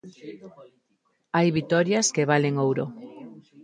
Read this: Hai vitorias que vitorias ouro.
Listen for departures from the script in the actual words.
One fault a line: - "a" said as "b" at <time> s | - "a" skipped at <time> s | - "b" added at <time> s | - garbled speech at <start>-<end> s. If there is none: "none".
- "vitorias" said as "valen" at 2.3 s